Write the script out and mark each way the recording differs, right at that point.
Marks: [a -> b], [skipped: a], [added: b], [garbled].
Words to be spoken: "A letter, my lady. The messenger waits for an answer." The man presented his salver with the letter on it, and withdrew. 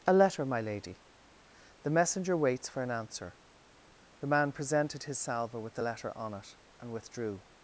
"A letter, my lady. The messenger waits for an answer." The man presented his salver with the letter on it, and withdrew.